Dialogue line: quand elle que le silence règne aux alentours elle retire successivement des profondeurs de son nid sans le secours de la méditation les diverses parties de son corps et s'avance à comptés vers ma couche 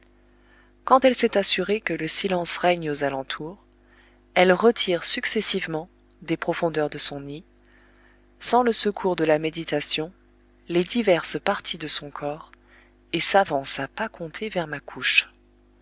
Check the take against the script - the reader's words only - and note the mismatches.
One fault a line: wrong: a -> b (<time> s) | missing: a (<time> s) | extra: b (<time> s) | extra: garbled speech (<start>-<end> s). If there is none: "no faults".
extra: s'est assurée (1.1 s)
extra: pas (13.9 s)